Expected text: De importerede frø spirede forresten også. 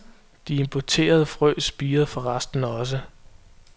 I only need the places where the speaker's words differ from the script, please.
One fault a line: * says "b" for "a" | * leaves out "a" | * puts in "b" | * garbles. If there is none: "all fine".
all fine